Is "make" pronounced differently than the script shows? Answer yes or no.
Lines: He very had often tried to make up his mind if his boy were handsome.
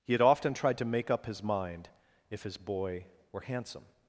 no